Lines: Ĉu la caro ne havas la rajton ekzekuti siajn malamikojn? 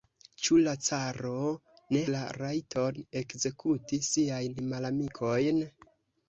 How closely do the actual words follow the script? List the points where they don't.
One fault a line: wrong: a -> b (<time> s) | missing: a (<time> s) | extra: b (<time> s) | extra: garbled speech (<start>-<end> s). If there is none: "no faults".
missing: havas (2.0 s)